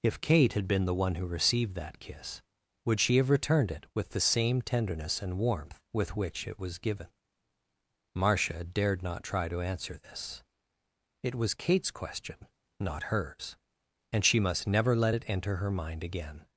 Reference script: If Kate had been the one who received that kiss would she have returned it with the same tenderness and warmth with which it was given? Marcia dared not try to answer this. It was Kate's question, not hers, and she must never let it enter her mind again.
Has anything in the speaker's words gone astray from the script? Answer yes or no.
no